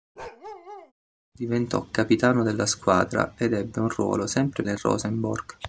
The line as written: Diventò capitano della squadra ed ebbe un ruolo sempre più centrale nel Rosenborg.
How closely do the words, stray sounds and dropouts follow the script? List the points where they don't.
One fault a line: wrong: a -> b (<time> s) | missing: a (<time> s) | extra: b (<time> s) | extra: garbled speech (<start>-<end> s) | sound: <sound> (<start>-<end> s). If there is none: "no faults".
sound: bark (0.2-0.9 s)
missing: più centrale (4.6 s)